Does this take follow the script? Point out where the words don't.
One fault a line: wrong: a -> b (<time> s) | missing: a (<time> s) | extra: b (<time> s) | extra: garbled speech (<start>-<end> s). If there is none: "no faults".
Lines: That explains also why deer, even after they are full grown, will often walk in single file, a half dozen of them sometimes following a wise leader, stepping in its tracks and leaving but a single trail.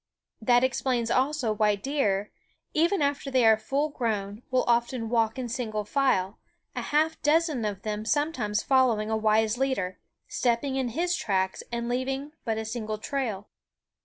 wrong: its -> his (10.9 s)